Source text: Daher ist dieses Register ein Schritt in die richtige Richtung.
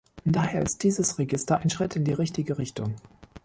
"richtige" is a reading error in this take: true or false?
false